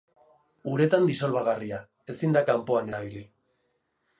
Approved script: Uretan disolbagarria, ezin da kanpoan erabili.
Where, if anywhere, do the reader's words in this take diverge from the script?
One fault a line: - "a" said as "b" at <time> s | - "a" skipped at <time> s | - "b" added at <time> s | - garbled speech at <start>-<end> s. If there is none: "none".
none